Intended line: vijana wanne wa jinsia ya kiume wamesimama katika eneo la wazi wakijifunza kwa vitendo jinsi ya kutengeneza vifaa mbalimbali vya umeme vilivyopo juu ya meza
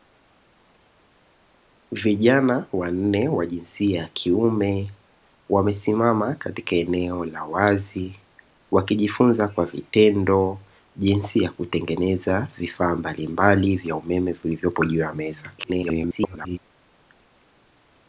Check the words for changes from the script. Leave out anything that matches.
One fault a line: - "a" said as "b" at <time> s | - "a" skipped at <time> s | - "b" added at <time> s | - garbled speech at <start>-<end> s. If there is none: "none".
- garbled speech at 15.6-16.6 s